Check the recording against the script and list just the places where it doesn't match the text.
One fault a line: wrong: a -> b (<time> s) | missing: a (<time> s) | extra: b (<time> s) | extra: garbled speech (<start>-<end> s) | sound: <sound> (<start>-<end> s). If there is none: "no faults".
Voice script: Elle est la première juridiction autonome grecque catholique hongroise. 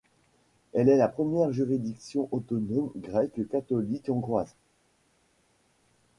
no faults